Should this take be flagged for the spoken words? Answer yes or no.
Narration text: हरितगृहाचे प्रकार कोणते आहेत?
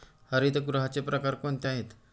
no